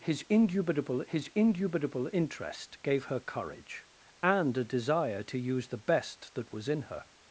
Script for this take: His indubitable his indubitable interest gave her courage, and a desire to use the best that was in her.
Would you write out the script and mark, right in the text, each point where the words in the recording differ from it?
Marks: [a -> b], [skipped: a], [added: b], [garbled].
His indubitable his indubitable interest gave her courage, and a desire to use the best that was in her.